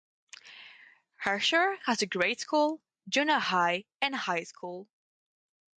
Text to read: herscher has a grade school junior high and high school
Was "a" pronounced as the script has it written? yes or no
yes